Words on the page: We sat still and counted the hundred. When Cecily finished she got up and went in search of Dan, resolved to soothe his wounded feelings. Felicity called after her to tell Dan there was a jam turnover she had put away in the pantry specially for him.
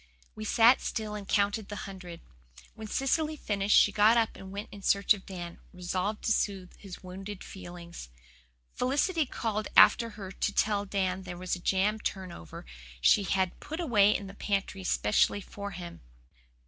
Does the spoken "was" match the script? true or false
true